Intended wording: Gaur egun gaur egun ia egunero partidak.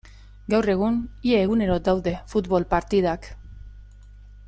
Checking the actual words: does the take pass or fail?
fail